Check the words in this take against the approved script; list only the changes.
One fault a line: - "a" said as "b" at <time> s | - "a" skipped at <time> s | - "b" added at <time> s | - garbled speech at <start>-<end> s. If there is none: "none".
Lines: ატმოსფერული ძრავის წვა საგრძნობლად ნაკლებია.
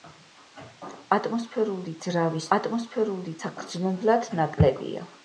- "წვა" said as "ატმოსფერული" at 2.6 s